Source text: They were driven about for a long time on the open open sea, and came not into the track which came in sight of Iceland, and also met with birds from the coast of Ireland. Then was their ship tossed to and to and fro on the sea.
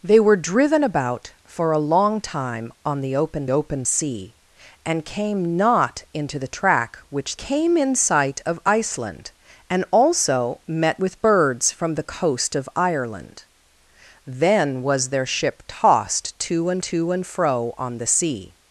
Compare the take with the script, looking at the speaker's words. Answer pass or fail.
pass